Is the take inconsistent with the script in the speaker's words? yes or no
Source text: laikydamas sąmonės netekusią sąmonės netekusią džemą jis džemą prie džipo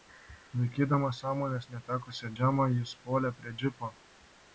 yes